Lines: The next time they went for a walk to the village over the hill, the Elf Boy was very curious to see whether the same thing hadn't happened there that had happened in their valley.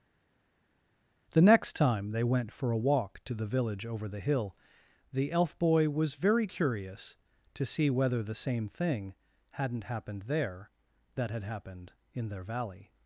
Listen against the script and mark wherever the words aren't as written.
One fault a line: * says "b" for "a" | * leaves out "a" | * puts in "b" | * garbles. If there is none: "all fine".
all fine